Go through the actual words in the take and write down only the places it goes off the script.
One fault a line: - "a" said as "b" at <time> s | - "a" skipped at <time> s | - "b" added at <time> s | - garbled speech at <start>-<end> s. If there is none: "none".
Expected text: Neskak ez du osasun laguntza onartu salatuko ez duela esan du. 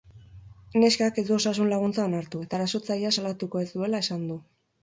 - "eta erasotzailea" added at 2.5 s